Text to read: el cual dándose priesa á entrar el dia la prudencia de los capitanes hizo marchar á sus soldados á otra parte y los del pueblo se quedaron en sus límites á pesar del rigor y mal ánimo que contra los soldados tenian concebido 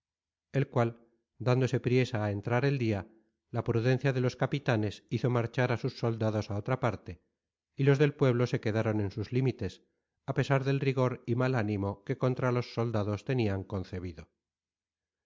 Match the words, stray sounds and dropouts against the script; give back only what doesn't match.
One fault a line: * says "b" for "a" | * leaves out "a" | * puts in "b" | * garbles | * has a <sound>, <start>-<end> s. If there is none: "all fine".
all fine